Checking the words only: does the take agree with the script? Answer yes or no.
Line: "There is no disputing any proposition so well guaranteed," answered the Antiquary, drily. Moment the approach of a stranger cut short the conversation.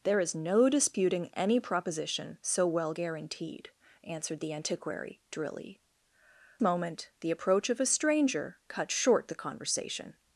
yes